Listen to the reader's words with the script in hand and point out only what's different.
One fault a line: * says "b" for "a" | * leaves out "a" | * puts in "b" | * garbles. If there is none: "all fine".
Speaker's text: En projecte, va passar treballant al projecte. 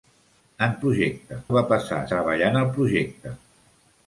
all fine